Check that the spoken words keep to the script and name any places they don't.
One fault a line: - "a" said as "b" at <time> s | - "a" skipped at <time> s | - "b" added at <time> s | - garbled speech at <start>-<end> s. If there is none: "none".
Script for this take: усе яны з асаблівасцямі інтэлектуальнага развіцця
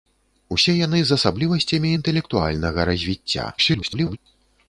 - garbled speech at 3.6-4.2 s